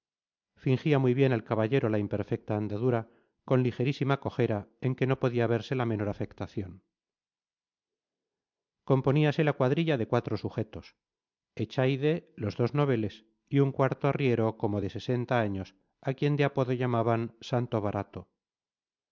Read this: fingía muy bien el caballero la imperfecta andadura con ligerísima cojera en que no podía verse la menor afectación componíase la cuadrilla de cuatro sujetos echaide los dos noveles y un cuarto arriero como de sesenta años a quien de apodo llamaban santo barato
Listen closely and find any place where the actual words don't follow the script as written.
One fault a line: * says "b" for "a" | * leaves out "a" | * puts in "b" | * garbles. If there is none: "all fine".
all fine